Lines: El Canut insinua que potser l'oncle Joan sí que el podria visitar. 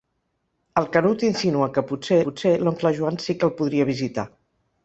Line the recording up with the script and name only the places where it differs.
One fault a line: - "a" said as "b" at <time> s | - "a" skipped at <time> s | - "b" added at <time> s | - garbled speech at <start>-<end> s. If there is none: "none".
- "potser" added at 2.3 s